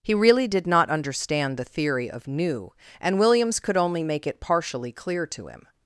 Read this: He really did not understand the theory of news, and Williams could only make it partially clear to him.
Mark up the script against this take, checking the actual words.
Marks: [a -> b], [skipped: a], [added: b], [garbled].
He really did not understand the theory of [news, -> new] and Williams could only make it partially clear to him.